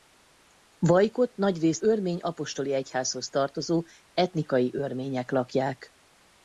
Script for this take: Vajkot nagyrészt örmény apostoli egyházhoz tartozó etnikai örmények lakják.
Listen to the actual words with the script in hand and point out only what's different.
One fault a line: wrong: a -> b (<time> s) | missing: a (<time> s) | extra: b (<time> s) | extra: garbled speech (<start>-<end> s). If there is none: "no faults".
no faults